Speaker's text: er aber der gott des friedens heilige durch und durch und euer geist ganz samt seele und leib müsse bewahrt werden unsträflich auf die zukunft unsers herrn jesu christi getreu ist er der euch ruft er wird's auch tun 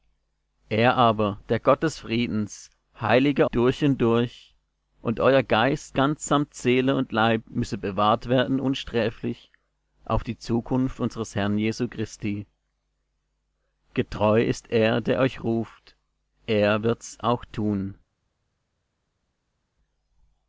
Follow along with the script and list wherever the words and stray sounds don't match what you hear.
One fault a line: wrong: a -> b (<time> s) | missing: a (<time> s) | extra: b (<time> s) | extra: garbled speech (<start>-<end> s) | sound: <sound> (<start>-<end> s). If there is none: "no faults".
no faults